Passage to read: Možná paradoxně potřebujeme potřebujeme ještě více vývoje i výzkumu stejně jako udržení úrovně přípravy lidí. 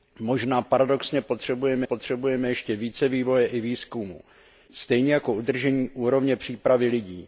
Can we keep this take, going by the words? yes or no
yes